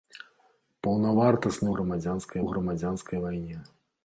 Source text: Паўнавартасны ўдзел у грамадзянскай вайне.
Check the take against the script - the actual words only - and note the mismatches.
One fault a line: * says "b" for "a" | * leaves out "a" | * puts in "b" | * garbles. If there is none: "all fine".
* says "грамадзянскай" for "ўдзел"